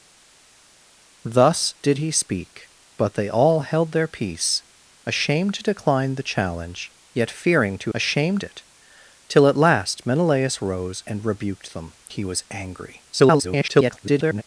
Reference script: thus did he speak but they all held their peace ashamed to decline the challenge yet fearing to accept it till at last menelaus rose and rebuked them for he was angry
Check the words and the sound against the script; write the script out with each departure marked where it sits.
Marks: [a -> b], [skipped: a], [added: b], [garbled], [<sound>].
thus did he speak but they all held their peace ashamed to decline the challenge yet fearing to [accept -> ashamed] it till at last menelaus rose and rebuked them [skipped: for] he was angry [garbled]